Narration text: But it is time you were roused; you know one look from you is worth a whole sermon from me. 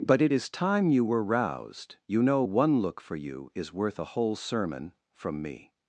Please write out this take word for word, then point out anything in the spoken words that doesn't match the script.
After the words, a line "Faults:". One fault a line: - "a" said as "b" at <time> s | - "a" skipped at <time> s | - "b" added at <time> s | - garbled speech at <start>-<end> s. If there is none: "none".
But it is time you were roused; you know one look for you is worth a whole sermon from me.
Faults:
- "from" said as "for" at 3.0 s